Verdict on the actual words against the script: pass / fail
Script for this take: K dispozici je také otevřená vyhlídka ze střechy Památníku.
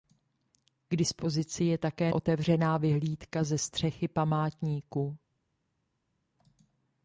pass